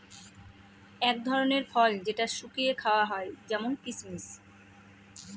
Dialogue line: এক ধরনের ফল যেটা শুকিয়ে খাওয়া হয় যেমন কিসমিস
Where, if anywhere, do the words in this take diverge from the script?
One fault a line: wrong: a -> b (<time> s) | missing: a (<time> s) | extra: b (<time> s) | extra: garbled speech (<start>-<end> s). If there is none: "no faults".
no faults